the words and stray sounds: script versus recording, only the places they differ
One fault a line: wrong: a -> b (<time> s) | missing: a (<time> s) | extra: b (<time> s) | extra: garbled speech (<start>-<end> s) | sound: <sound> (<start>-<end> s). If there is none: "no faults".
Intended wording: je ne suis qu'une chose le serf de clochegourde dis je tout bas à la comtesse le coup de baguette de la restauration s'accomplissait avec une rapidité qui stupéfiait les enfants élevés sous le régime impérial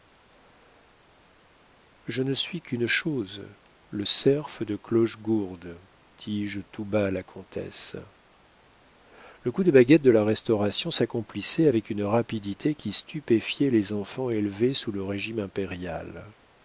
no faults